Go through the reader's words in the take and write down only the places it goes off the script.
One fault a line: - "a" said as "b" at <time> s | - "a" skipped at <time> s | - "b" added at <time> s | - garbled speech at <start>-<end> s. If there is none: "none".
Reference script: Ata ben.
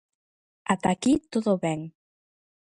- "aquí todo" added at 0.9 s